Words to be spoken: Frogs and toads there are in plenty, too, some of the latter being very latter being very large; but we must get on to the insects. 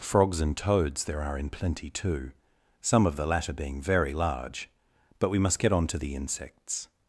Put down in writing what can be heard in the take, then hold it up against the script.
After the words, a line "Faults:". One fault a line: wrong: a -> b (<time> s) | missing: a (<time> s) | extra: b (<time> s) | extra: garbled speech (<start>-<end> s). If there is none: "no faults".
Frogs and toads there are in plenty, too, some of the latter being very large; but we must get on to the insects.
Faults:
missing: latter being very (4.1 s)